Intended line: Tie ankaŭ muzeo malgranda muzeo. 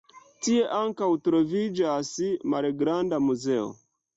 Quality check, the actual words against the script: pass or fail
fail